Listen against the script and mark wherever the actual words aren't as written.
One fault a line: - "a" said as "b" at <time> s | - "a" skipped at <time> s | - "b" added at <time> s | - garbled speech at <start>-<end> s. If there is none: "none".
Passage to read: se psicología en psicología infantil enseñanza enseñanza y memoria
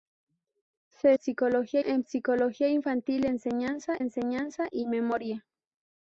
none